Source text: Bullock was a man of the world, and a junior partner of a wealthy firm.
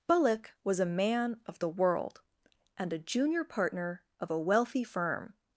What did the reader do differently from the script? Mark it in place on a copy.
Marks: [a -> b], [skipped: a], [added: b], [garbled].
Bullock was a man of the world, and a junior partner of a wealthy firm.